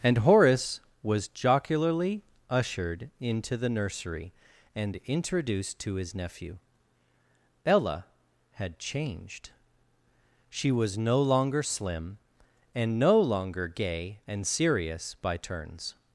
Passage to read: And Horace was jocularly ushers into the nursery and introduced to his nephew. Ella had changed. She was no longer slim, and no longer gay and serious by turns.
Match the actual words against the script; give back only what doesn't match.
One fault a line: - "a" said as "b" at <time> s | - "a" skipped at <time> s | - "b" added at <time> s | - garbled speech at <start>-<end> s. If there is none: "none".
- "ushers" said as "ushered" at 2.5 s